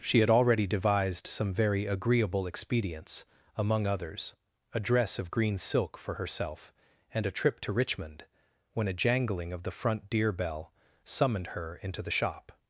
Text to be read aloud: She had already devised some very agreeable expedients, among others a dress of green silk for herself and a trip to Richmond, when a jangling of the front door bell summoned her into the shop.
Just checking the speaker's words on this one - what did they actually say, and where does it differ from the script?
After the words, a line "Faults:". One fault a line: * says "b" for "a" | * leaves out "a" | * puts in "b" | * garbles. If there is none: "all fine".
She had already devised some very agreeable expedients, among others a dress of green silk for herself and a trip to Richmond, when a jangling of the front deer bell summoned her into the shop.
Faults:
* says "deer" for "door"